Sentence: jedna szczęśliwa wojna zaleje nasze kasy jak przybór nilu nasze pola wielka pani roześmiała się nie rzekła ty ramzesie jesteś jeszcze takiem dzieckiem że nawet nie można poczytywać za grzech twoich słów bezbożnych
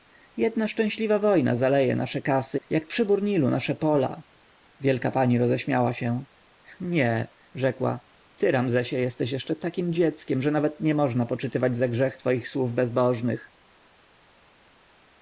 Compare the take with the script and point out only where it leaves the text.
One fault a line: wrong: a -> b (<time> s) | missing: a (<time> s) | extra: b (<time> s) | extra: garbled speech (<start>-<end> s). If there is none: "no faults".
no faults